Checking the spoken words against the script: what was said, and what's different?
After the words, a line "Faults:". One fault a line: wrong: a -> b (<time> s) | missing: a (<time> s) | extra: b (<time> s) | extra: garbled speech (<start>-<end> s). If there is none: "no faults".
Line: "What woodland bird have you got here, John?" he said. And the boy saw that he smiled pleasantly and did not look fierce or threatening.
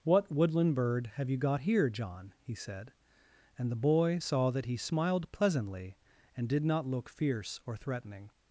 "What woodland bird have you got here, John?" he said. And the boy saw that he smiled pleasantly and did not look fierce or threatening.
Faults:
no faults